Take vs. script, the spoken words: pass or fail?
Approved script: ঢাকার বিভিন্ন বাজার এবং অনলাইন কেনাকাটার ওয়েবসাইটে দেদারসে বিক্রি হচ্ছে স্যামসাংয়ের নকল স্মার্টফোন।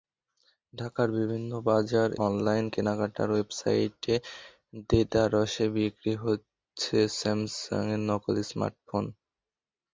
fail